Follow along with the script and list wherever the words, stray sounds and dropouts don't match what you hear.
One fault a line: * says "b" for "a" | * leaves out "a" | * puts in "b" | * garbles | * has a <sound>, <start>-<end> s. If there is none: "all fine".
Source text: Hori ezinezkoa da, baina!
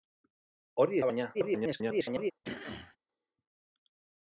* leaves out "ezinezkoa"
* garbles
* has a throat clearing, 2.4-3.0 s